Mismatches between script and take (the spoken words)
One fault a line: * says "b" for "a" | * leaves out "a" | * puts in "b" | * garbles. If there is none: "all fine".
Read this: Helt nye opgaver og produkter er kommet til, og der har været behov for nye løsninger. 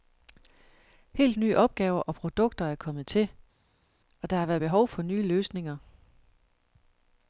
all fine